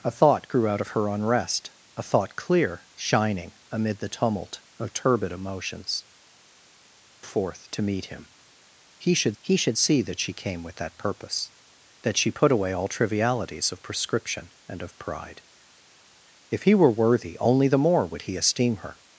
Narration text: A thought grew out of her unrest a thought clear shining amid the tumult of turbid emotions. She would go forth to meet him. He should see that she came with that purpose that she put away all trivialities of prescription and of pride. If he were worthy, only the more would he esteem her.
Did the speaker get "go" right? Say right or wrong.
wrong